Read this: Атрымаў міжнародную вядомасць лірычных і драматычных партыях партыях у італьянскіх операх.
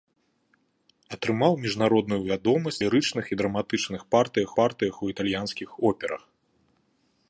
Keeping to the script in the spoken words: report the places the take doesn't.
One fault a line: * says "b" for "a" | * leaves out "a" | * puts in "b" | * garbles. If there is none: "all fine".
all fine